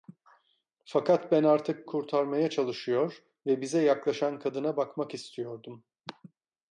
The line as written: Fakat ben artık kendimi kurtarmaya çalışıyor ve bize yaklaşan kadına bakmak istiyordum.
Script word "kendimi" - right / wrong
wrong